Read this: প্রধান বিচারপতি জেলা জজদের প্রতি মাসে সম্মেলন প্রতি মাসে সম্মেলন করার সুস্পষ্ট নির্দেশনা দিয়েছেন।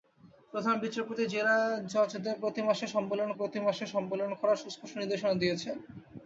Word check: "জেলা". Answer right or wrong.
right